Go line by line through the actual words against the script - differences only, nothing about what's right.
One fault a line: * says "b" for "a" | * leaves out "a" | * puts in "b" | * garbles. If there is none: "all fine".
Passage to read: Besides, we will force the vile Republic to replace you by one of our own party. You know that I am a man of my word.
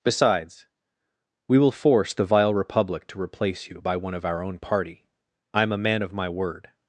* leaves out "You know that"